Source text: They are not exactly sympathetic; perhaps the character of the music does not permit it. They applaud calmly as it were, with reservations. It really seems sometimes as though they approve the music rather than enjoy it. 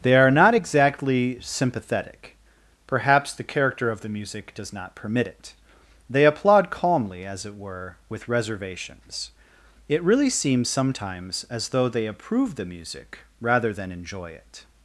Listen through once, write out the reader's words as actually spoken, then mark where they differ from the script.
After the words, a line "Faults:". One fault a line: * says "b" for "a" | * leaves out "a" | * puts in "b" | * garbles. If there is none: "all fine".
They are not exactly sympathetic; perhaps the character of the music does not permit it. They applaud calmly as it were, with reservations. It really seems sometimes as though they approve the music rather than enjoy it.
Faults:
all fine